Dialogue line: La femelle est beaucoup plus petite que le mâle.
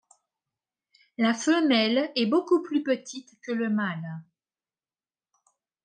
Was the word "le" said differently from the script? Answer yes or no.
no